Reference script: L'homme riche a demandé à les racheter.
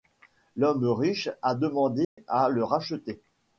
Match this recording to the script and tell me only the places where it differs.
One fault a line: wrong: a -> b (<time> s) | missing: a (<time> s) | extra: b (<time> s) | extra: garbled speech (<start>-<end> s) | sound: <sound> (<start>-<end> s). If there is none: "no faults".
sound: dropout (2.0-2.2 s)
wrong: les -> le (2.5 s)